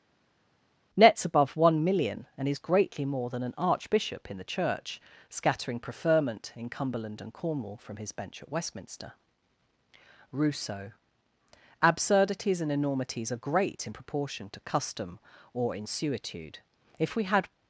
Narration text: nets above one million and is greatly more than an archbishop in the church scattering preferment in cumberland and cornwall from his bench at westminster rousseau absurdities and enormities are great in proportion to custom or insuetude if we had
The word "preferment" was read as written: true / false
true